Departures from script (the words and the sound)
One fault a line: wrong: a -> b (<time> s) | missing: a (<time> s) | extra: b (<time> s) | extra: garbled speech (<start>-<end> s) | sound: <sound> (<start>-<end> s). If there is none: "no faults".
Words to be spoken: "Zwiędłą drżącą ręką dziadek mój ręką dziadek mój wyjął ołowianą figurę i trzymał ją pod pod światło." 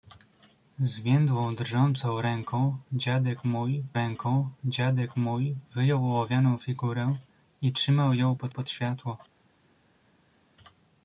no faults